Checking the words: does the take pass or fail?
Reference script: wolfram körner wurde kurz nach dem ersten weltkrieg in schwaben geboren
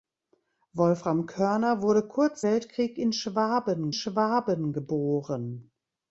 fail